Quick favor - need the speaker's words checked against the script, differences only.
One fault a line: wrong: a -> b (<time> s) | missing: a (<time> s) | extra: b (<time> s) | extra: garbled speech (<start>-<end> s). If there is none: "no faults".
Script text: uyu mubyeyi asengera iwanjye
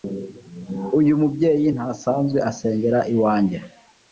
extra: ntasanzwe (1.7 s)